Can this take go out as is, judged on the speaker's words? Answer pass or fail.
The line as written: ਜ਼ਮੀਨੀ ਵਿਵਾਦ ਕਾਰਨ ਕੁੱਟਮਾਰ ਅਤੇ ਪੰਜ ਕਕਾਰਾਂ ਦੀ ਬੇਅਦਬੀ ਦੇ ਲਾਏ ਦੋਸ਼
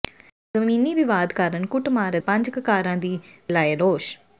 fail